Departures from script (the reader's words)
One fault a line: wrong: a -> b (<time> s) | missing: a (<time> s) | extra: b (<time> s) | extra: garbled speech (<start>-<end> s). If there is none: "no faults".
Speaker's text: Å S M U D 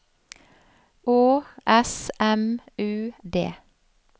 no faults